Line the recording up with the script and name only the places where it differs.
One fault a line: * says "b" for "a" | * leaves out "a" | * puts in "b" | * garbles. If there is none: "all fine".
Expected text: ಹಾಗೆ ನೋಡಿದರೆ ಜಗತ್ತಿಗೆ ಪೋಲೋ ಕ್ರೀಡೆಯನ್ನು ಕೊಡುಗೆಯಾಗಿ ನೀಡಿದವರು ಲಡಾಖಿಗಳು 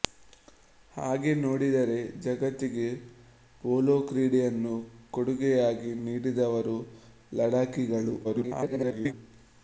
* garbles